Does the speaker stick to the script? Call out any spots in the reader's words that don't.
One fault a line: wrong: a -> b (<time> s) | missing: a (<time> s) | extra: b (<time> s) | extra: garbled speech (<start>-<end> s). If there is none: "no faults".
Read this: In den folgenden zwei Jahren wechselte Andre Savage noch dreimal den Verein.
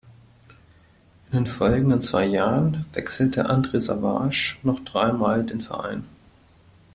no faults